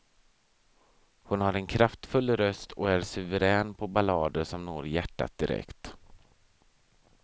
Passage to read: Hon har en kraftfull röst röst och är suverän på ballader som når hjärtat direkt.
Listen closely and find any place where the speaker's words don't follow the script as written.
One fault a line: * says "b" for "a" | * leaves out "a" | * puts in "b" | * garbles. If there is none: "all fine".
* leaves out "röst"